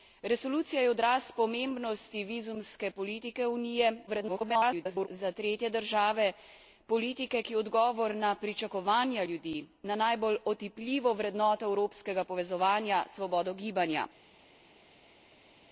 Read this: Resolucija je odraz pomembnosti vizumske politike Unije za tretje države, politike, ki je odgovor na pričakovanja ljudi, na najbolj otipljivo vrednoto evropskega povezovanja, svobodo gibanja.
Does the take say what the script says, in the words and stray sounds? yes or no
no